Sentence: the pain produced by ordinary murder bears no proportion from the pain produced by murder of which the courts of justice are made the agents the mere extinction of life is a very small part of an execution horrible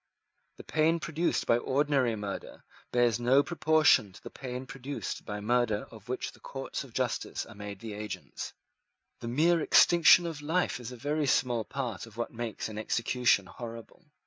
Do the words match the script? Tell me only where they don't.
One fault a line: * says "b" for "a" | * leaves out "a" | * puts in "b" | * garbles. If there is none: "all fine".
* says "to" for "from"
* puts in "what makes"